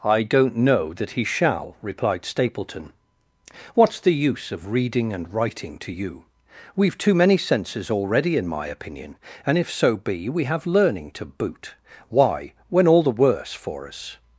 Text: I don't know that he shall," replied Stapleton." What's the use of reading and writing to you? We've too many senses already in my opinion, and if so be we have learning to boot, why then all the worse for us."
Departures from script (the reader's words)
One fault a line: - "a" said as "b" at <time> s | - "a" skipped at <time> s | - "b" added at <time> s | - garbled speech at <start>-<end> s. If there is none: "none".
- "then" said as "when" at 12.7 s